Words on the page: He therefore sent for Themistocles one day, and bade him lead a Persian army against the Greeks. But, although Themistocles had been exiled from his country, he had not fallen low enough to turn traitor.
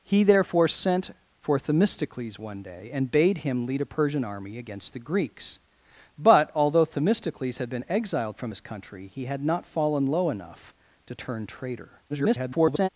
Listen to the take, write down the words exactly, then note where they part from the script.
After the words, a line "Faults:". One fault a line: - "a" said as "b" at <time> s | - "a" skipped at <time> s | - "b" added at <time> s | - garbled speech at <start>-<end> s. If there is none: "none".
He therefore sent for Themistocles one day, and bade him lead a Persian army against the Greeks. But, although Themistocles had been exiled from his country, he had not fallen low enough to turn traitor. [garbled]
Faults:
- garbled speech at 12.1-12.9 s